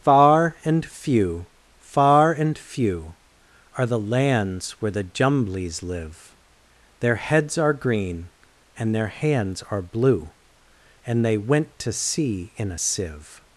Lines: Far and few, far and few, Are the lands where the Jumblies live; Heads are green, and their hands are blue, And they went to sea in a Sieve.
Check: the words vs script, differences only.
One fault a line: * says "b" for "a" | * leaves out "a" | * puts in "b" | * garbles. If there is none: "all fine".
* puts in "Their"